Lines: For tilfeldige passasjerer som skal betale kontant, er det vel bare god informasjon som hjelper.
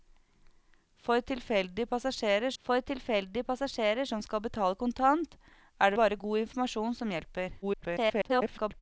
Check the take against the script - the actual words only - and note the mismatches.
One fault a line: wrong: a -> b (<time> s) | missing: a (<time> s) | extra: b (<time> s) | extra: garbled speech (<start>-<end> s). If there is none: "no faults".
extra: for tilfeldige passasjerer (2.6 s)
missing: vel (6.0 s)
extra: garbled speech (7.6-8.8 s)